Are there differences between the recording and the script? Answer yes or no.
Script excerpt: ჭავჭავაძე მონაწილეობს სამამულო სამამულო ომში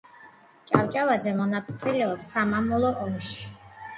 yes